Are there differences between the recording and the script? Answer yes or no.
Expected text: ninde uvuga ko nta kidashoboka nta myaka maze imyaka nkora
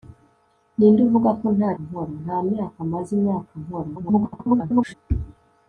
yes